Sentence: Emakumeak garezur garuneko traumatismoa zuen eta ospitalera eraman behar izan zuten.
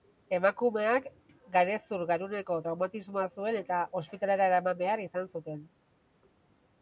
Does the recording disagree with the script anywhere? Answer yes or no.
no